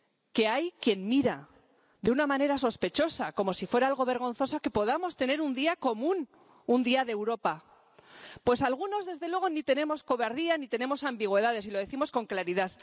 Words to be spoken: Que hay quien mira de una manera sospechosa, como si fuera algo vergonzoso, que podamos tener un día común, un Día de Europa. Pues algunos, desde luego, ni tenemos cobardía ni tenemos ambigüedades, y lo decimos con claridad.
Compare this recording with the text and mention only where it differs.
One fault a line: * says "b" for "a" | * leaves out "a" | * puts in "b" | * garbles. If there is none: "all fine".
all fine